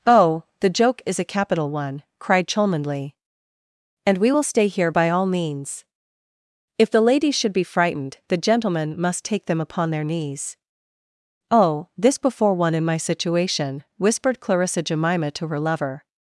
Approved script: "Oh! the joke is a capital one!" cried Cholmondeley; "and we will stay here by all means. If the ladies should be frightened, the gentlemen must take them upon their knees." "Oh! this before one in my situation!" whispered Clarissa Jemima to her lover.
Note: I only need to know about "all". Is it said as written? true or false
true